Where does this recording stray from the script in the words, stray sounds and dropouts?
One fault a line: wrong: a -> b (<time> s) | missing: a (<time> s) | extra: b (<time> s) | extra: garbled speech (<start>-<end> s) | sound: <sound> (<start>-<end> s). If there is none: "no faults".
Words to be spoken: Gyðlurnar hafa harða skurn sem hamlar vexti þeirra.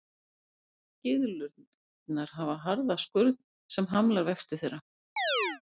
sound: chirp (5.2-5.6 s)